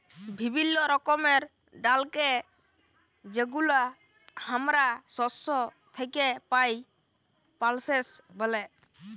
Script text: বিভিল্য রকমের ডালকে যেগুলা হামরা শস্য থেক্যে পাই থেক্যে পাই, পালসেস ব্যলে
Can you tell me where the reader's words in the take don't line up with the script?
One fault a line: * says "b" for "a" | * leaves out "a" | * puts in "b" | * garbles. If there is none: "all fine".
* leaves out "থেক্যে পাই"